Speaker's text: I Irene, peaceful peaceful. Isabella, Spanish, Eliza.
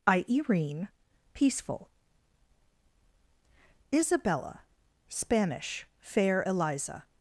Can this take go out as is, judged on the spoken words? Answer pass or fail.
fail